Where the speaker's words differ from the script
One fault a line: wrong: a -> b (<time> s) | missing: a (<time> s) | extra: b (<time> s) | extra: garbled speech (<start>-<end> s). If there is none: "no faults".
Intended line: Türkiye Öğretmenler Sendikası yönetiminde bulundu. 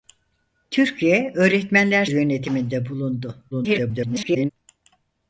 missing: Sendikası (2.0 s)
extra: garbled speech (3.5-4.5 s)